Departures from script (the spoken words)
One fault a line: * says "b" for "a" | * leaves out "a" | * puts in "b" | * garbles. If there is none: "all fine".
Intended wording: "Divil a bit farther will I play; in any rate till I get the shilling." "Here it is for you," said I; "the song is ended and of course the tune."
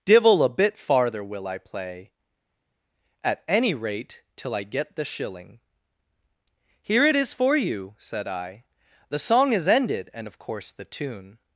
* says "at" for "in"